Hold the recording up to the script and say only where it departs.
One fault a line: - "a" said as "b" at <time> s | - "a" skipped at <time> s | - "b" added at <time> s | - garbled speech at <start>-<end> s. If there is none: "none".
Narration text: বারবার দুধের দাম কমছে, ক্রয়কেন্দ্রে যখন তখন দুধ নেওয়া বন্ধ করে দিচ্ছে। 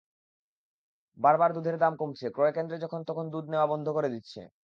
none